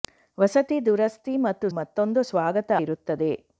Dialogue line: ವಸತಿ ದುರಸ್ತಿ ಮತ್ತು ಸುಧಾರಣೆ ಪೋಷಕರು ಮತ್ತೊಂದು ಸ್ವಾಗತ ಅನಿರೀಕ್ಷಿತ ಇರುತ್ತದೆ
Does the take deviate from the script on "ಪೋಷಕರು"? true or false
true